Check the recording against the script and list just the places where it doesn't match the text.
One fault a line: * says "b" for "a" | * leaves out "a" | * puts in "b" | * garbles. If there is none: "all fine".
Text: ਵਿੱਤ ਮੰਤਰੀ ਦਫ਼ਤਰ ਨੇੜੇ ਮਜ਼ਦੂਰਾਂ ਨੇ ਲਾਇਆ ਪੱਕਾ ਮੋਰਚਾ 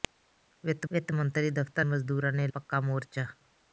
* puts in "ਵਿੱਤ"
* leaves out "ਨੇੜੇ"
* leaves out "ਲਾਇਆ"